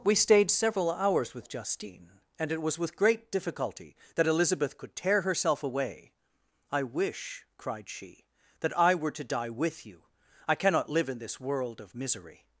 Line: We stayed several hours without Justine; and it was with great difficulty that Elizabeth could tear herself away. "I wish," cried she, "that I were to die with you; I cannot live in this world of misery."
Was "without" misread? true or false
true